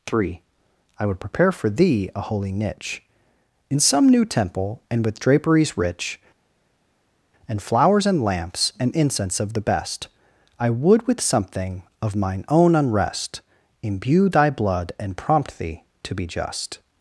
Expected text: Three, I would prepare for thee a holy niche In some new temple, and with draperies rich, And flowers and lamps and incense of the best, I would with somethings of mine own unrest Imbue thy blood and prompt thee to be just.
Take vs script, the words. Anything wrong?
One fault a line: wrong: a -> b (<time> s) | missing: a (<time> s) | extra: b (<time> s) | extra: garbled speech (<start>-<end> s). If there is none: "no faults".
wrong: somethings -> something (11.2 s)